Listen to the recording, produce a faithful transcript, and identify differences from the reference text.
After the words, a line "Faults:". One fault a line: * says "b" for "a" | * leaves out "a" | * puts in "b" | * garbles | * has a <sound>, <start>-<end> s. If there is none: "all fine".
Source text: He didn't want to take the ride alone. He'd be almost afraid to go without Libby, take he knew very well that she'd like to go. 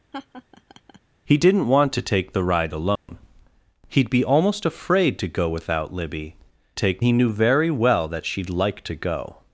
He didn't want to take the ride alone. He'd be almost afraid to go without Libby, take he knew very well that she'd like to go.
Faults:
* has a laugh, 0.1-1.0 s
* has a dropout, 3.0-3.1 s